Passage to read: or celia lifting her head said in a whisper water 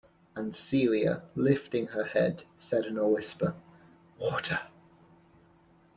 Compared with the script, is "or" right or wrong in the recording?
wrong